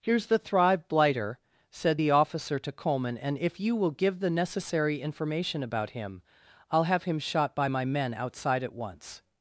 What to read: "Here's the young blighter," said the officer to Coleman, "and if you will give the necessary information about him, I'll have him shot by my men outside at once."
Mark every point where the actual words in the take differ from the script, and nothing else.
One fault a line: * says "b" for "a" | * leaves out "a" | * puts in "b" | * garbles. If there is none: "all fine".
* says "thrive" for "young"